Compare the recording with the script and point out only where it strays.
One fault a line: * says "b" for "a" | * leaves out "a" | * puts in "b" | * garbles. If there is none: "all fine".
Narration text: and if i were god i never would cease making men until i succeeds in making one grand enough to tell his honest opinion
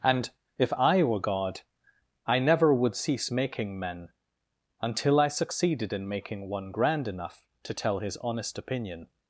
* says "succeeded" for "succeeds"